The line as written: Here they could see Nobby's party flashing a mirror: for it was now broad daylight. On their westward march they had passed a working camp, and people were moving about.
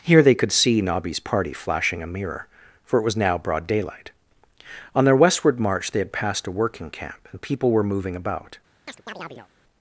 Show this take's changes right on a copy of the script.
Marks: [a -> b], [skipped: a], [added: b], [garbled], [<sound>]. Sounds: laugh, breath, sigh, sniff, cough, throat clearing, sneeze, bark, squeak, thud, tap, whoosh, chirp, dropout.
Here they could see Nobby's party flashing a mirror: for it was now broad daylight. On their westward march they had passed a working camp, and people were moving about. [chirp]